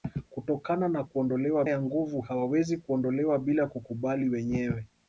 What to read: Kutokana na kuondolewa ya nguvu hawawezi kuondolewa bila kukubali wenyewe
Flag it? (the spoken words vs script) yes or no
no